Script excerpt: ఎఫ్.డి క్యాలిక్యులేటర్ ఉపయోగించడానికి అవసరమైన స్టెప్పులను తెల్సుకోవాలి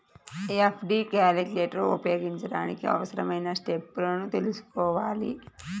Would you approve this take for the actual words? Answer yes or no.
yes